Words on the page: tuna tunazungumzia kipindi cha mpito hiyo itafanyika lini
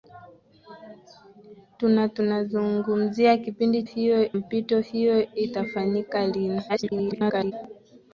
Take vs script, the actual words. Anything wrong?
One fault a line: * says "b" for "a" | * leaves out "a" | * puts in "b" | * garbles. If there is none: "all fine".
* says "hiyo" for "cha"
* garbles